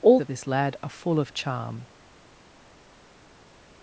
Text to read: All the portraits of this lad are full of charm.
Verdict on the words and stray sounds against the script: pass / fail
fail